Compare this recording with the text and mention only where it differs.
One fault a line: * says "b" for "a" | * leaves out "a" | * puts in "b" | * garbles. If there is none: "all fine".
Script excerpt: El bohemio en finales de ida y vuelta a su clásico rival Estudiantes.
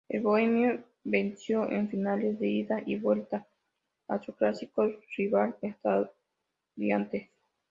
* puts in "venció"